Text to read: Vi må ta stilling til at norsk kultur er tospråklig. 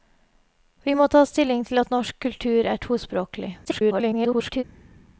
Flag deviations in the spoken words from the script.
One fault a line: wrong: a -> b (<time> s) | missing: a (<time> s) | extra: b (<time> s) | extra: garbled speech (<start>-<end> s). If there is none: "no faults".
extra: garbled speech (3.6-4.6 s)